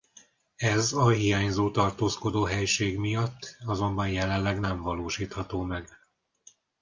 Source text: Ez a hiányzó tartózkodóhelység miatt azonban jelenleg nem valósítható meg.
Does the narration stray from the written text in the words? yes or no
no